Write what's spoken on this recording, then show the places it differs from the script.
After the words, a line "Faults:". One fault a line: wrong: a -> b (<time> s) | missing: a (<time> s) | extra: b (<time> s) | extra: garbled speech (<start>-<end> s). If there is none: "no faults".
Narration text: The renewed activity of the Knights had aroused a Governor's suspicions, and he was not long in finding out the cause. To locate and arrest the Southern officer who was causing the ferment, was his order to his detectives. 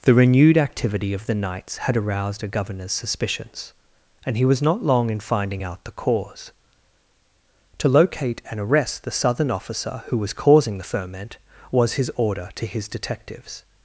The renewed activity of the Knights had aroused a Governor's suspicions, and he was not long in finding out the cause. To locate and arrest the Southern officer who was causing the ferment, was his order to his detectives.
Faults:
no faults